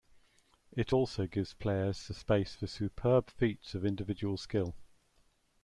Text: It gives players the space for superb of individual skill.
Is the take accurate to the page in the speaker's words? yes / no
no